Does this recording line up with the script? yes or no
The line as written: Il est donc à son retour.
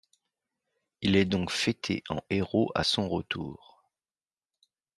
no